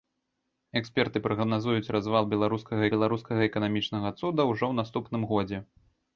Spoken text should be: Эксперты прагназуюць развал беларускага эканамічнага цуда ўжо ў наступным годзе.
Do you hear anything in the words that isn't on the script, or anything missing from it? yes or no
yes